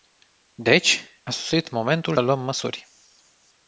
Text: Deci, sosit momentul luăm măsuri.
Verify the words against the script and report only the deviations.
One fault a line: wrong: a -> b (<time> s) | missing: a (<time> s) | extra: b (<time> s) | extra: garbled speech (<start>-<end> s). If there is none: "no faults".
no faults